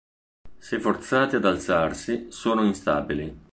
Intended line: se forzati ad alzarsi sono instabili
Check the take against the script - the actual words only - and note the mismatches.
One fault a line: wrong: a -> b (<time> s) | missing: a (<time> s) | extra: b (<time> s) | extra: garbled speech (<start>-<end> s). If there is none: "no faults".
no faults